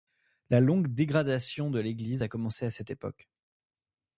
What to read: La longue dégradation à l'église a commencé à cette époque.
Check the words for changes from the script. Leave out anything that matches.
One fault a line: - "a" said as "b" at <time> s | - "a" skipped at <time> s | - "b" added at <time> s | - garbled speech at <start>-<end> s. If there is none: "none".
- "à" said as "de" at 1.7 s